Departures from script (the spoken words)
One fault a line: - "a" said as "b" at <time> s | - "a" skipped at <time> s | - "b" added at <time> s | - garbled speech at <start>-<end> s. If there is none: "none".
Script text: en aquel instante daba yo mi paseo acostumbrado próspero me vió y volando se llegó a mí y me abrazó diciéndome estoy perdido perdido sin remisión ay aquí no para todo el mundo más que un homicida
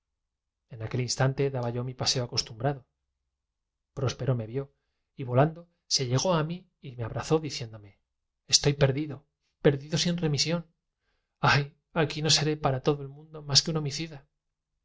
- "seré" added at 12.3 s